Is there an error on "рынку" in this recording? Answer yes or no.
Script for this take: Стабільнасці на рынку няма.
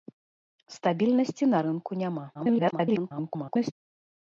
no